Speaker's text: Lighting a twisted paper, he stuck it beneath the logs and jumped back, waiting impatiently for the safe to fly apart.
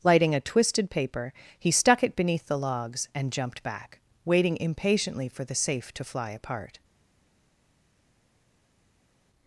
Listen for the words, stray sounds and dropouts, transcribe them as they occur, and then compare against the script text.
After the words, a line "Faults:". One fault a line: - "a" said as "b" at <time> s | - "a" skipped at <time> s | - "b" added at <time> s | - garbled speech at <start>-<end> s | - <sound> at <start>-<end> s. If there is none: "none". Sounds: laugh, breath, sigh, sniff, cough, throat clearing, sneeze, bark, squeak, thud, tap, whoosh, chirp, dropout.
Lighting a twisted paper, he stuck it beneath the logs and jumped back, waiting impatiently for the safe to fly apart.
Faults:
none